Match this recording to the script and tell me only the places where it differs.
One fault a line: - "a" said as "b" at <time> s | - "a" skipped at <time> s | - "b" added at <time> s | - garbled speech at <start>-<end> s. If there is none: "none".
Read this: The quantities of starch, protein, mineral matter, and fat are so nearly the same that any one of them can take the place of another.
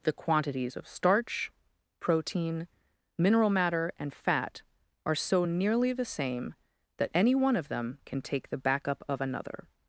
- "place" said as "backup" at 8.6 s